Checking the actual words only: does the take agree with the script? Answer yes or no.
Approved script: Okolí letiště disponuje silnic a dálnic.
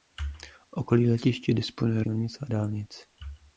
yes